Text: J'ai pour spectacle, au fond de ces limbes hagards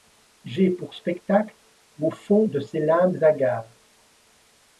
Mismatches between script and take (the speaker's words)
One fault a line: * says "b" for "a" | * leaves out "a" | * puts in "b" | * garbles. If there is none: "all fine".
all fine